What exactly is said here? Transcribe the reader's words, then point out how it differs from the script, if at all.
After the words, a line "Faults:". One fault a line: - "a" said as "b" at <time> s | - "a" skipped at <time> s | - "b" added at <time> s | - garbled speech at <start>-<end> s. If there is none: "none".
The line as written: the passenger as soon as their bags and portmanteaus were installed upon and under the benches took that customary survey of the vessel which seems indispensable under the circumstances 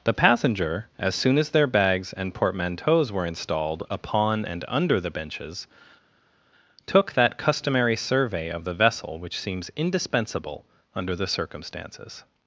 the passenger as soon as their bags and portmanteaus were installed upon and under the benches took that customary survey of the vessel which seems indispensable under the circumstances
Faults:
none